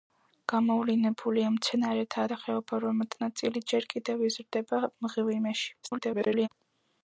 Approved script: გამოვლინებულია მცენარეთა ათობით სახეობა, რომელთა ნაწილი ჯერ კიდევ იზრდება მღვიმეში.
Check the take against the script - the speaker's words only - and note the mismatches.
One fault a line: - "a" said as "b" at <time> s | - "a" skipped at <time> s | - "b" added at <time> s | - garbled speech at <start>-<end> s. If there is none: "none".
- "ათობით" skipped at 2.2 s
- garbled speech at 5.8-6.5 s